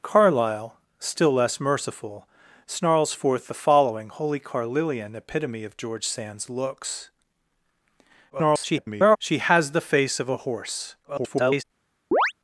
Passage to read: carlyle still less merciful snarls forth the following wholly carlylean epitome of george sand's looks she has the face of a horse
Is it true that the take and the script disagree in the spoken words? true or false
true